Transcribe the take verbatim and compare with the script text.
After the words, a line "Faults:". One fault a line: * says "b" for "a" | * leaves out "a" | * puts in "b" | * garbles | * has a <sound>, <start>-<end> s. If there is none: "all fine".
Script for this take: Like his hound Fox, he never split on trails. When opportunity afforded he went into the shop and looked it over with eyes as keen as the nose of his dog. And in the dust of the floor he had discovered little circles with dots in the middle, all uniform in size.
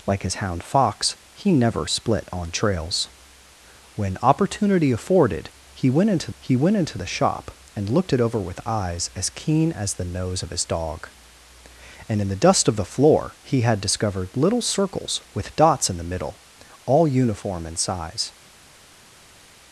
Like his hound Fox, he never split on trails. When opportunity afforded he went into he went into the shop and looked it over with eyes as keen as the nose of his dog. And in the dust of the floor he had discovered little circles with dots in the middle, all uniform in size.
Faults:
* puts in "he went into"